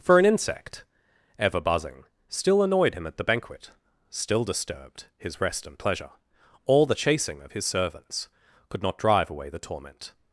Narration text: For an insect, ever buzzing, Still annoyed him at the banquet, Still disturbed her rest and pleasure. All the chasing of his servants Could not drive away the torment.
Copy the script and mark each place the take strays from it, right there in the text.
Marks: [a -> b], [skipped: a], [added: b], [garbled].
For an insect, ever buzzing, Still annoyed him at the banquet, Still disturbed [her -> his] rest and pleasure. All the chasing of his servants Could not drive away the torment.